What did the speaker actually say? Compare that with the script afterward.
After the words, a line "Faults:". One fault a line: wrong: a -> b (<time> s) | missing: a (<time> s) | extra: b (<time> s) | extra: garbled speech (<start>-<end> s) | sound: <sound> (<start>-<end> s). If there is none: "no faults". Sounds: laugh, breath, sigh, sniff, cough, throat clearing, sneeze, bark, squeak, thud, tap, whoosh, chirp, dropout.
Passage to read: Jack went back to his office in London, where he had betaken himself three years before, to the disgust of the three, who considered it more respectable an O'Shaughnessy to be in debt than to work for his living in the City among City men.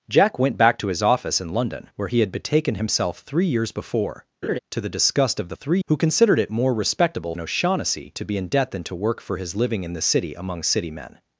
Jack went back to his office in London, where he had betaken himself three years before, to the disgust of the three, who considered it more respectable an O'Shaughnessy to be in debt than to work for his living in the City among City men.
Faults:
sound: laugh (4.4-4.6 s)